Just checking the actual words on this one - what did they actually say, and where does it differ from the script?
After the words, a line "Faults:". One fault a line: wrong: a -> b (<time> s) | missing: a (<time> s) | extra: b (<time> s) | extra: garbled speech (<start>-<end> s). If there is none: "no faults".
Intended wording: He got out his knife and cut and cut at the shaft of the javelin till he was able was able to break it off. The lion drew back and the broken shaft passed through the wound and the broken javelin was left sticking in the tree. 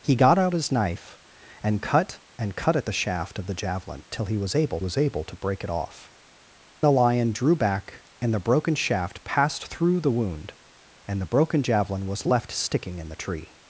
He got out his knife and cut and cut at the shaft of the javelin till he was able was able to break it off. The lion drew back and the broken shaft passed through the wound and the broken javelin was left sticking in the tree.
Faults:
no faults